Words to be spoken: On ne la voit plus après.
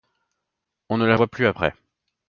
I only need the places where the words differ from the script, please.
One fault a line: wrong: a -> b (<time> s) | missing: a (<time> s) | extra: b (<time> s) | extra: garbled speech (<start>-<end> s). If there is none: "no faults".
no faults